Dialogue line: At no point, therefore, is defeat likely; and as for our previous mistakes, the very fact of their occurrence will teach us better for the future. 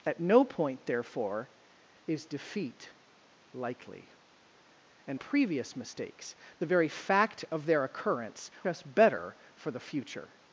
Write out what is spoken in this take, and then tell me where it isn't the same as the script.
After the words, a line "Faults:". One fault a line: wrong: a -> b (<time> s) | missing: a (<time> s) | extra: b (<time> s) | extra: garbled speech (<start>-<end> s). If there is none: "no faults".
At no point, therefore, is defeat likely; and previous mistakes, the very fact of their occurrence us better for the future.
Faults:
missing: as for our (5.2 s)
missing: will teach (8.5 s)